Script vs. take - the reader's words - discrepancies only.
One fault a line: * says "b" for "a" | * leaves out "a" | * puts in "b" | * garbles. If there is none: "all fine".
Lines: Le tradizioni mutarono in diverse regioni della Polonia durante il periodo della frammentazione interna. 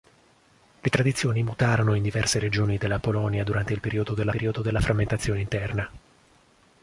* puts in "periodo della"